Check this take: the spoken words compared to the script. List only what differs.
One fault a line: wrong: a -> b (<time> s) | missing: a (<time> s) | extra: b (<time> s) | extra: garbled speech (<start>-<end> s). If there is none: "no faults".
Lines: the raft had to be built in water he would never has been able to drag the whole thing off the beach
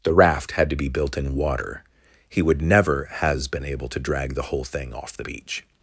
no faults